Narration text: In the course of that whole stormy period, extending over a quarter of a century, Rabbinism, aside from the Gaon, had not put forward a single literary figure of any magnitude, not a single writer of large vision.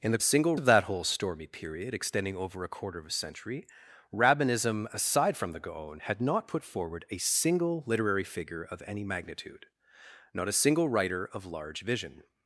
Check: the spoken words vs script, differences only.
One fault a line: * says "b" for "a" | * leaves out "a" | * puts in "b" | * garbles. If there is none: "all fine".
* says "single" for "course"